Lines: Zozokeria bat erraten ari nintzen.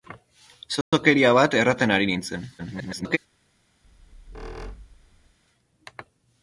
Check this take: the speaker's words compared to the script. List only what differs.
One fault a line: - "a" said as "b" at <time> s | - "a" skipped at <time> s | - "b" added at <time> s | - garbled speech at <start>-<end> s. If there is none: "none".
- garbled speech at 2.6-3.2 s